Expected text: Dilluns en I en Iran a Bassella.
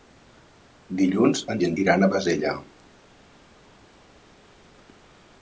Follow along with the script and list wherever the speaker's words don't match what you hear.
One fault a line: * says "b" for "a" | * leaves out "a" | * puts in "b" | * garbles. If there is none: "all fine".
all fine